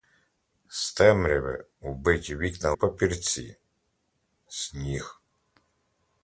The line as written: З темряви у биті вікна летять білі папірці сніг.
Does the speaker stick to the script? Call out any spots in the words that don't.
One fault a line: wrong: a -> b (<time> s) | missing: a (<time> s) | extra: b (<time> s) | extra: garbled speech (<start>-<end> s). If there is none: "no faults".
missing: летять білі (2.7 s)